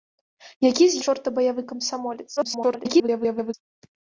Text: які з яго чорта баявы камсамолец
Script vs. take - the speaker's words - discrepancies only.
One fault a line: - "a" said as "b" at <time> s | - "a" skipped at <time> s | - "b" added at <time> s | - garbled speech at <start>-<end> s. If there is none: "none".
- "яго" skipped at 1.0 s
- garbled speech at 2.4-3.5 s